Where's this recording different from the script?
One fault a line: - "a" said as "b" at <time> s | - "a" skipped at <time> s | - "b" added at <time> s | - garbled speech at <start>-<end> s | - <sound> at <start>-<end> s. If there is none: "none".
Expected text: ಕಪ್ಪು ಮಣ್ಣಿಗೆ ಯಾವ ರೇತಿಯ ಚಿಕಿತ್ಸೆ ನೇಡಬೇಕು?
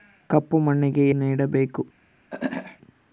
- "ಯಾವ ರೇತಿಯ ಚಿಕಿತ್ಸೆ" skipped at 1.1 s
- throat clearing at 2.3-2.8 s